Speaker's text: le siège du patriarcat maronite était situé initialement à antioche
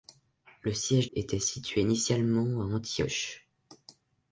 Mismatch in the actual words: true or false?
true